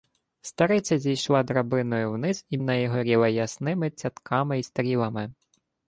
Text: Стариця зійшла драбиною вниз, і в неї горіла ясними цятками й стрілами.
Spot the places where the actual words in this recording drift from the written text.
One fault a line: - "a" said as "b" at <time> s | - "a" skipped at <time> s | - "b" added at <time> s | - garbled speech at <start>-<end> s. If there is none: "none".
none